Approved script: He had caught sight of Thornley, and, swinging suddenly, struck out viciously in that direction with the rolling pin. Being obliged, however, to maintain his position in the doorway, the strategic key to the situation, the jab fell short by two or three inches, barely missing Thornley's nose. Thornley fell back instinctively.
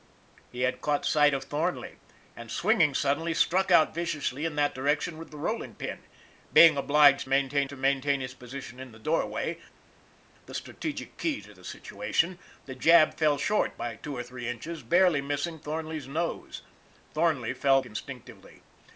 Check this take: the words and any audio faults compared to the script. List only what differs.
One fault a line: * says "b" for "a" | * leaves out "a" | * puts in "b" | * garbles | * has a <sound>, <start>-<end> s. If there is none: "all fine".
* says "maintain" for "however"
* leaves out "back"